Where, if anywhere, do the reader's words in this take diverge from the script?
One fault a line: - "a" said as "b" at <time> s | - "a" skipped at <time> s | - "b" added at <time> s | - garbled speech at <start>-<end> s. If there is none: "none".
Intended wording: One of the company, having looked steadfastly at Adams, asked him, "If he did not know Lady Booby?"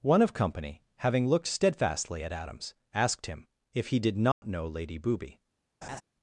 - "the" skipped at 0.3 s